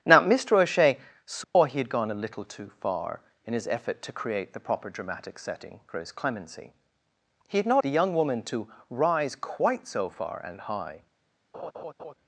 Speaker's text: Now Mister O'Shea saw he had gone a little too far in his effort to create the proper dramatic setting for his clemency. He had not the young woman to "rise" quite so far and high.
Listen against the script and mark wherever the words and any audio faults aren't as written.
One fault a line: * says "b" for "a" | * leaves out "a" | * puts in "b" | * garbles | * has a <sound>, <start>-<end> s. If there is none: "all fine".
* has a dropout, 1.4-1.6 s
* has a laugh, 11.5-12.1 s